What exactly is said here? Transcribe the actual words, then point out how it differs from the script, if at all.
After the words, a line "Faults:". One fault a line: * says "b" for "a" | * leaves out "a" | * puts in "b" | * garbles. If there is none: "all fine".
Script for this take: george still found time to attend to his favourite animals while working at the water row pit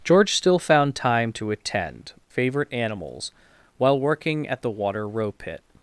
george still found time to attend favourite animals while working at the water row pit
Faults:
* leaves out "to his"